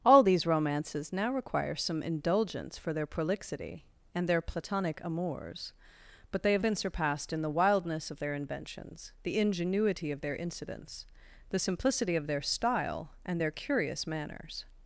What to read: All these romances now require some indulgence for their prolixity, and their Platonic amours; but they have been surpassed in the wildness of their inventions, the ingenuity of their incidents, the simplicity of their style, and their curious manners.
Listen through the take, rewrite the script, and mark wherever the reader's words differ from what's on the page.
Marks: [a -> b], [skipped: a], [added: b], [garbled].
All these romances now require some indulgence for their prolixity, and their Platonic amours; but they have been surpassed in the wildness of their inventions, the ingenuity of their incidents, the simplicity of their style, and their curious manners.